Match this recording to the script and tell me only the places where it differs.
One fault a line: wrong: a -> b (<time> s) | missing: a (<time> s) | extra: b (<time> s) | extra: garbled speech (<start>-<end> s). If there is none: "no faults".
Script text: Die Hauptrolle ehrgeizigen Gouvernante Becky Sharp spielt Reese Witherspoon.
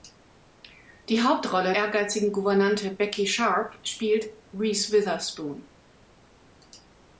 no faults